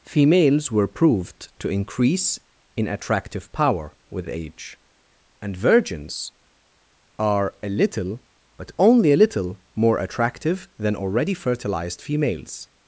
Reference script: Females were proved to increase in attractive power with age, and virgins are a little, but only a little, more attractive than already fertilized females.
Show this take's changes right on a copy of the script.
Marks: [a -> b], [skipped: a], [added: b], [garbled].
Females were proved to increase in attractive power with age, and virgins are a little, but only a little, more attractive than already fertilized females.